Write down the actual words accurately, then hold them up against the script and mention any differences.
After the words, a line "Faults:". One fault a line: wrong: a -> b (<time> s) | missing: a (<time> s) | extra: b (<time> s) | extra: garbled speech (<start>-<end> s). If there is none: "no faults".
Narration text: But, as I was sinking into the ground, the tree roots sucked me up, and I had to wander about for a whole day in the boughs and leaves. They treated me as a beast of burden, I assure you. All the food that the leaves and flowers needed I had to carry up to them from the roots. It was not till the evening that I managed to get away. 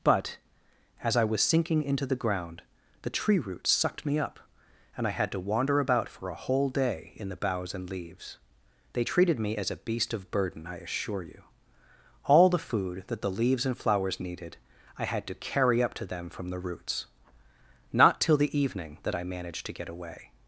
But, as I was sinking into the ground, the tree roots sucked me up, and I had to wander about for a whole day in the boughs and leaves. They treated me as a beast of burden, I assure you. All the food that the leaves and flowers needed I had to carry up to them from the roots. not till the evening that I managed to get away.
Faults:
missing: It was (17.0 s)